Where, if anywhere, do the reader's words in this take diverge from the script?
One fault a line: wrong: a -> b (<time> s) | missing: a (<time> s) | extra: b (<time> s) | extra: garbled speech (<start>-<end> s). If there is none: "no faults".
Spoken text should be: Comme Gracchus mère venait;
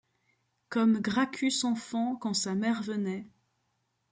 extra: enfant quand sa (1.7 s)